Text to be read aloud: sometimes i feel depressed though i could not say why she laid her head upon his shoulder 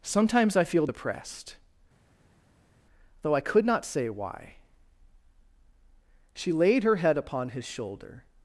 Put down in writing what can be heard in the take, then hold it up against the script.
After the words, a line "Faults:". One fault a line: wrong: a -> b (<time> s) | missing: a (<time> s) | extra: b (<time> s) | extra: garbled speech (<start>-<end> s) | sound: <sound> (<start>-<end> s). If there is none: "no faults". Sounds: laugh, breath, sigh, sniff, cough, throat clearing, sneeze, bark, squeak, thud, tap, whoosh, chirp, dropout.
sometimes i feel depressed though i could not say why she laid her head upon his shoulder
Faults:
no faults